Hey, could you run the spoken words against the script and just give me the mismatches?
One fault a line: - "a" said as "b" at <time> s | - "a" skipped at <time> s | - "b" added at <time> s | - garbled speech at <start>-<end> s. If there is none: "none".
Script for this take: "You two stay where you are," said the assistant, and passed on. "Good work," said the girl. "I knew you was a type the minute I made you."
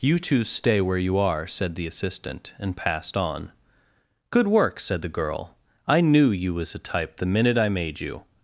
none